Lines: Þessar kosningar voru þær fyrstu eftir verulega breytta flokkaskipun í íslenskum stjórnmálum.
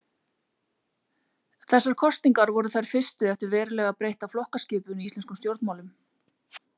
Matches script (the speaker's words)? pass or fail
pass